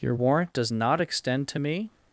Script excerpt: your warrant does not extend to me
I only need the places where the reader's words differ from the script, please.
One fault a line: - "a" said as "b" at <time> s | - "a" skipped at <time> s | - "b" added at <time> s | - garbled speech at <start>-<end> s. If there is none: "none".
none